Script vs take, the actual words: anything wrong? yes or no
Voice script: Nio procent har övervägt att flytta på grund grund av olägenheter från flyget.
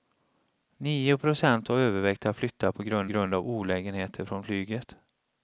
no